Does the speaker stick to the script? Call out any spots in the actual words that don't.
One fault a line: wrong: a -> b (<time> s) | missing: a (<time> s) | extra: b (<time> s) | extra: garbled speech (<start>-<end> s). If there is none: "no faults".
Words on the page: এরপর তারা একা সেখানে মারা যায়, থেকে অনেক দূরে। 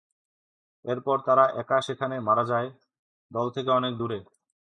extra: দল (3.3 s)